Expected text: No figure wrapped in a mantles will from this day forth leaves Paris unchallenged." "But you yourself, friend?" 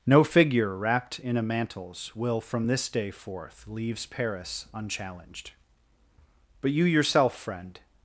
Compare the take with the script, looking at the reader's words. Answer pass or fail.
pass